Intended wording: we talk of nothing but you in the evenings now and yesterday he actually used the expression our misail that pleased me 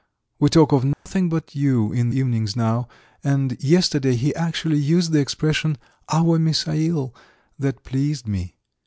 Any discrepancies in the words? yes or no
yes